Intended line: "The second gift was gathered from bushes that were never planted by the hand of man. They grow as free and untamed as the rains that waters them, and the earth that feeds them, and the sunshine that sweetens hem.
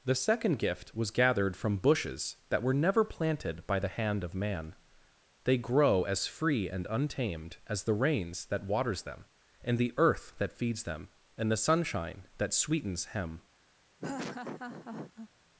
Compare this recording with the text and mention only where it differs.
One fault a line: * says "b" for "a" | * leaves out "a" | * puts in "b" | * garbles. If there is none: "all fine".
all fine